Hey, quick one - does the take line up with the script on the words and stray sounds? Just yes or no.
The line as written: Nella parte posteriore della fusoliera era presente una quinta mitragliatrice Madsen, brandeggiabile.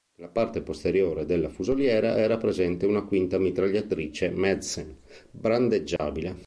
no